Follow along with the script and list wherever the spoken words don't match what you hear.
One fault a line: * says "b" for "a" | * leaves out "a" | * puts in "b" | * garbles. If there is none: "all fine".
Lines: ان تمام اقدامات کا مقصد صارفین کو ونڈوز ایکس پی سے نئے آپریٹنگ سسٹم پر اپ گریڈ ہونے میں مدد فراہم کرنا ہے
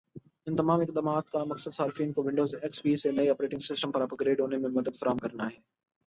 all fine